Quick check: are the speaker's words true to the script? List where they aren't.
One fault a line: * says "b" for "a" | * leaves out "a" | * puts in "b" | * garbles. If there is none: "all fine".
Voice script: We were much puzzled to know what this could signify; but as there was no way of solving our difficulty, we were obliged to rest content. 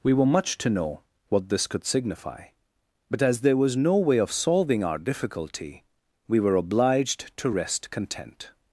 * leaves out "puzzled"